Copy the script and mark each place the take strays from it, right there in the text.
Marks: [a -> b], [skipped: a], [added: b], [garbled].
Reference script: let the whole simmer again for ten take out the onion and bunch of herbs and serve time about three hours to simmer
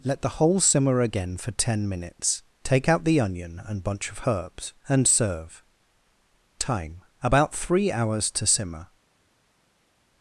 let the whole simmer again for ten [added: minutes] take out the onion and bunch of herbs and serve time about three hours to simmer